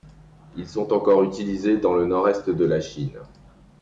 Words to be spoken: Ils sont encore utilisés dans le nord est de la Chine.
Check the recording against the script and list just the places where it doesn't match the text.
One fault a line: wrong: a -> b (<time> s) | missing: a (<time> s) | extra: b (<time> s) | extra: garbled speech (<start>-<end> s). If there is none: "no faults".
no faults